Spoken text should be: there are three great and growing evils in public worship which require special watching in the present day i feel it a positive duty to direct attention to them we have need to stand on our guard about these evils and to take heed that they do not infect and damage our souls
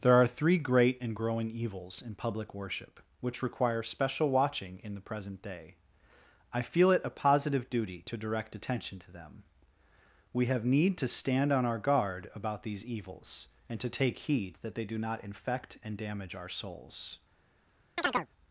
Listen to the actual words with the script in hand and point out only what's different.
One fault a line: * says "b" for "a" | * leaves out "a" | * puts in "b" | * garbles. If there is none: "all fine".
all fine